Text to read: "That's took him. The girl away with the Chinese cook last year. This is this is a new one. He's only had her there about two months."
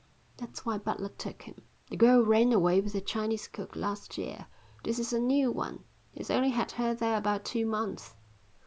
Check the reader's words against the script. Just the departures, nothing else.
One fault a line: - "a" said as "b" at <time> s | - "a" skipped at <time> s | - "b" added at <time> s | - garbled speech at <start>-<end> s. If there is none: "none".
- "why Butler" added at 0.7 s
- "ran" added at 2.2 s
- "this is" skipped at 5.1 s